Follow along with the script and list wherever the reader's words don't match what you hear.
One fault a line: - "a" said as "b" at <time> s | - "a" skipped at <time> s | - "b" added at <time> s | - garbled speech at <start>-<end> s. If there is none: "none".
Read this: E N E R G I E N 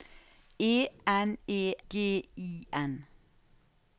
- "R" skipped at 1.8 s
- "E" skipped at 2.7 s